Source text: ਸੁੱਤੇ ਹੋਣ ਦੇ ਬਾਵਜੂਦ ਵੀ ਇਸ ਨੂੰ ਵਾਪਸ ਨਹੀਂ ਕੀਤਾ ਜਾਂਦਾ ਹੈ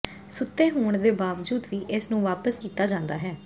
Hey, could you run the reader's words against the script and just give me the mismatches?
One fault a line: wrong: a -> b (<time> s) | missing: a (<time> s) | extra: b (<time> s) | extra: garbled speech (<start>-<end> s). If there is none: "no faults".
missing: ਨਹੀਂ (2.6 s)